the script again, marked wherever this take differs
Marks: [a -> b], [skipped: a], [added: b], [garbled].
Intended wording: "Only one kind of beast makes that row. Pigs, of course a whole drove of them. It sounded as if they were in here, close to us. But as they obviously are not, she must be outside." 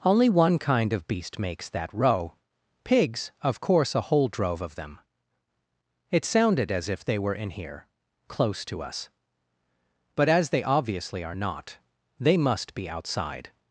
"Only one kind of beast makes that row. Pigs, of course a whole drove of them. It sounded as if they were in here, close to us. But as they obviously are not, [she -> they] must be outside."